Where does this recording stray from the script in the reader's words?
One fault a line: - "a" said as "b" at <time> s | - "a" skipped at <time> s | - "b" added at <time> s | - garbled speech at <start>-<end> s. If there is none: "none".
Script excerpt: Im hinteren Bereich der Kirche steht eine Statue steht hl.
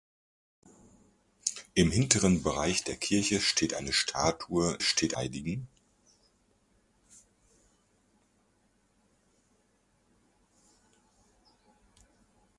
none